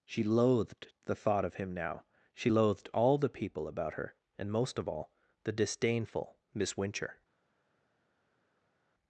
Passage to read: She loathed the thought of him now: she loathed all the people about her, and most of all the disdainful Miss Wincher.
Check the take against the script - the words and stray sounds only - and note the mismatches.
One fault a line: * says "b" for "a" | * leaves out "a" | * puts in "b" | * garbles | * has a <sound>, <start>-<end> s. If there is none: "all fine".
all fine